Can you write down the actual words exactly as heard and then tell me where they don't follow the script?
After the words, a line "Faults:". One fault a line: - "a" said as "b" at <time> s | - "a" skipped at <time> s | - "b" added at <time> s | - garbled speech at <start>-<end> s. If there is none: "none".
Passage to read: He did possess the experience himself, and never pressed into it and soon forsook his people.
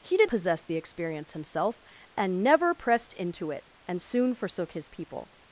He did possess the experience himself, and never pressed into it and soon forsook his people.
Faults:
none